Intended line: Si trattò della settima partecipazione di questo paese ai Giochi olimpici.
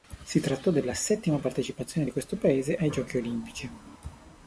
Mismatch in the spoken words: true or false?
false